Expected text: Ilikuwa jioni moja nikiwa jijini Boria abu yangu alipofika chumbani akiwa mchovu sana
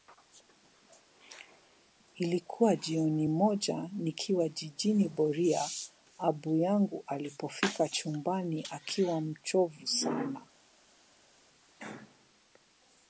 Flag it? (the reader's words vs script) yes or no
no